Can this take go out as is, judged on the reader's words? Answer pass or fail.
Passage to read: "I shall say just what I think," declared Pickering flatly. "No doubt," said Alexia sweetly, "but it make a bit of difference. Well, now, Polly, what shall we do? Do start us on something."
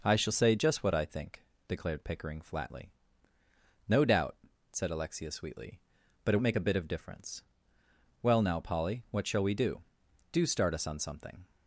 pass